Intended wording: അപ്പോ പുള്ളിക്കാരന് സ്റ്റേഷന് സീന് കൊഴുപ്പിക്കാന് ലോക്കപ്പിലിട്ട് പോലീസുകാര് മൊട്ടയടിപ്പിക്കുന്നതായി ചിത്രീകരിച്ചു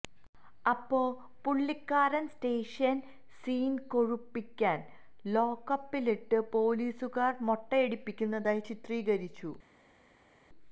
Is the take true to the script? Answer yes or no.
yes